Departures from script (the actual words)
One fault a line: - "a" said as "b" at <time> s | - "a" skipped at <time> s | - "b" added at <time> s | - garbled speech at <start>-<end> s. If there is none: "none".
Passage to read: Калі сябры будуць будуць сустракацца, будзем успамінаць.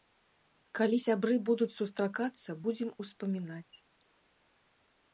- "будуць" skipped at 1.7 s